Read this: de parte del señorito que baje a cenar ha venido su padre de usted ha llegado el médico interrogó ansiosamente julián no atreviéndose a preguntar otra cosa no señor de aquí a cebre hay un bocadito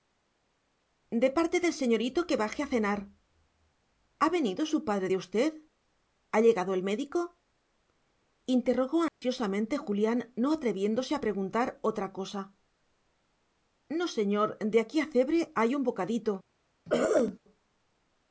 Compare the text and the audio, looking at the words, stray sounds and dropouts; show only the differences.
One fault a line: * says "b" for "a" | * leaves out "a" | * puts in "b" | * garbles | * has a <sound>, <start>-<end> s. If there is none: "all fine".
* has a dropout, 9.1-9.2 s
* has a throat clearing, 16.9-17.4 s